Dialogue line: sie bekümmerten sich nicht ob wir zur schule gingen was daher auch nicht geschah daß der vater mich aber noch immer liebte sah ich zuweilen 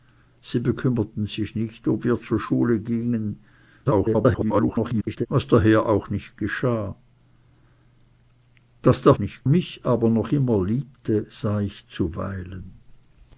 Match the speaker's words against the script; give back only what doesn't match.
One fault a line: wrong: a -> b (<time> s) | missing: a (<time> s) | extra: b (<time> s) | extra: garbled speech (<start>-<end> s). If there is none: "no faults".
extra: garbled speech (3.9-5.3 s)
wrong: vater -> nicht (9.2 s)